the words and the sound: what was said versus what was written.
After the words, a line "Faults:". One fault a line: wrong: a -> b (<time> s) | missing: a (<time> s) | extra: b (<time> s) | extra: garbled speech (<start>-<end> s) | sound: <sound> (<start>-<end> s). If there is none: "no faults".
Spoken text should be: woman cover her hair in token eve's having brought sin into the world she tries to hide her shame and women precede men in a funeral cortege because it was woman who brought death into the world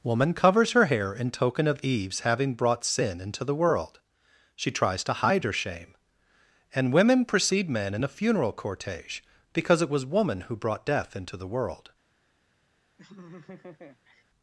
woman covers her hair in token of eve's having brought sin into the world she tries to hide her shame and women precede men in a funeral cortege because it was woman who brought death into the world
Faults:
wrong: cover -> covers (0.3 s)
extra: of (1.7 s)
sound: laugh (13.0-14.2 s)